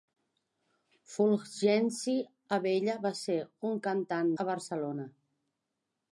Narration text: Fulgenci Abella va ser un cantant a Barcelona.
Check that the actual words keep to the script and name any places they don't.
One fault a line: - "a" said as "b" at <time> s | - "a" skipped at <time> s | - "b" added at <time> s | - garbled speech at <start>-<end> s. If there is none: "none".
none